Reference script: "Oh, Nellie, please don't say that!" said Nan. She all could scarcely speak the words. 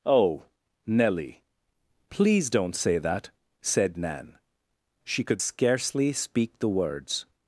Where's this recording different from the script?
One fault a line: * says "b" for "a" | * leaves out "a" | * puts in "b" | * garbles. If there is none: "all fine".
* leaves out "all"